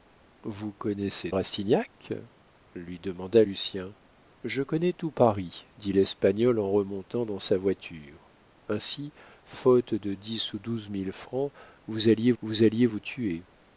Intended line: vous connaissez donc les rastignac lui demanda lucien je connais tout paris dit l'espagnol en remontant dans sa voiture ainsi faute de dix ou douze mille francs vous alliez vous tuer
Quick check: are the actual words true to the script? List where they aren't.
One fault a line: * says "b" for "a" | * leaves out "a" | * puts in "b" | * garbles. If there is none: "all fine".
* leaves out "donc les"
* puts in "alliez vous"